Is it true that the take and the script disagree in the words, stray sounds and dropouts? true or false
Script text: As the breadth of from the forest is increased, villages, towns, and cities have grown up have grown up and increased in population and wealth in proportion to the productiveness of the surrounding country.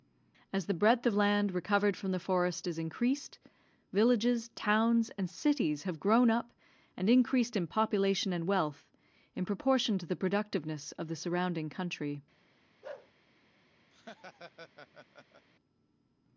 true